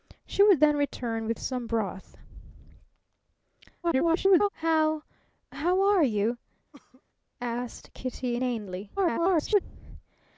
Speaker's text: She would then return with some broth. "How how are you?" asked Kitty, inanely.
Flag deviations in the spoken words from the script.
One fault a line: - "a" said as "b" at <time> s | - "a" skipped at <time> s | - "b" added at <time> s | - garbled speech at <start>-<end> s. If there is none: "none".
- garbled speech at 3.8-4.5 s
- garbled speech at 9.0-9.6 s